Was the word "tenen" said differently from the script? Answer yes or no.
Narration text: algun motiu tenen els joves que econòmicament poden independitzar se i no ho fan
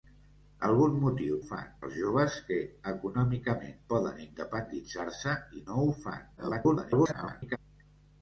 yes